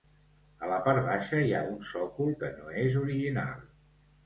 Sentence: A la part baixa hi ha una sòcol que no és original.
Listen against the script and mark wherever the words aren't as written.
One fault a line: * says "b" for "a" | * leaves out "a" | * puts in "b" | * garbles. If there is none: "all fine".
* says "un" for "una"